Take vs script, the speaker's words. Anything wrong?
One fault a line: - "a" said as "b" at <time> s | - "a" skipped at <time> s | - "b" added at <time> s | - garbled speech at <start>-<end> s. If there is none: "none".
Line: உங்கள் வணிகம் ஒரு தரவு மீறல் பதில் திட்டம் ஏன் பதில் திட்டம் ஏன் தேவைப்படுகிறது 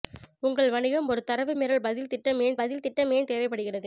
none